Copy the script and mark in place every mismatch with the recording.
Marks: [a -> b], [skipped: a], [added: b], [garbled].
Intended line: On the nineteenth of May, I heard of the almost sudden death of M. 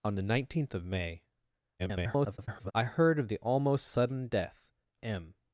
On the nineteenth of May, [garbled] I heard of the almost sudden death [skipped: of] M.